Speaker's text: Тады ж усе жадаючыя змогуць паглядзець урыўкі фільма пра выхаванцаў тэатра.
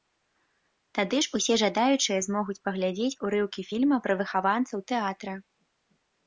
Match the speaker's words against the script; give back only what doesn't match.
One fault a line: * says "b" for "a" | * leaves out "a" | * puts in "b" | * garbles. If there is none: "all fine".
all fine